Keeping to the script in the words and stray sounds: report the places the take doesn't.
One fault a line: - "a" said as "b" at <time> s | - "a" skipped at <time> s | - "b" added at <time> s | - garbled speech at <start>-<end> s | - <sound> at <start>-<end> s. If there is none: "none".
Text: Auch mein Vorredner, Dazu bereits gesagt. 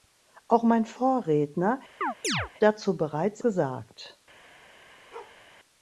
- chirp at 2.0-2.5 s
- bark at 5.1-5.4 s